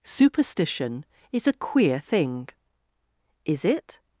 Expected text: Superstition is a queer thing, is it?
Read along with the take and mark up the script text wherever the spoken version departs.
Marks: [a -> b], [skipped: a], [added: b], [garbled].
Superstition is a queer thing, is it?